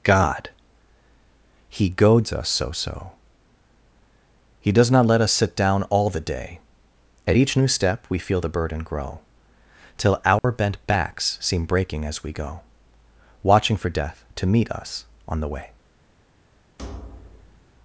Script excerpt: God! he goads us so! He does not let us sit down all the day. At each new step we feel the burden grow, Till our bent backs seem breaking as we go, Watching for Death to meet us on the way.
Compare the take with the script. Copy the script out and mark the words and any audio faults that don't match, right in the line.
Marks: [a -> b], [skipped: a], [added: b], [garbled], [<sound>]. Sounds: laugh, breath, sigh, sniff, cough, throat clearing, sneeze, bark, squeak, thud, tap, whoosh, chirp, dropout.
God! he goads us so! [added: so] He does not let us sit down all the day. At each new step we feel the burden grow, Till our [dropout] bent backs seem breaking as we go, Watching for Death to meet us on the way. [thud]